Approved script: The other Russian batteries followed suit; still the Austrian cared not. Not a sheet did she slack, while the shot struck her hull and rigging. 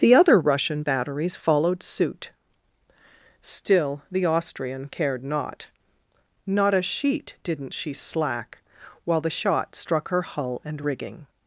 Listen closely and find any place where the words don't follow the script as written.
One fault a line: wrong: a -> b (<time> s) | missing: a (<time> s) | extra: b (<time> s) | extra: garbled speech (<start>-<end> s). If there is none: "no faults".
wrong: did -> didn't (7.4 s)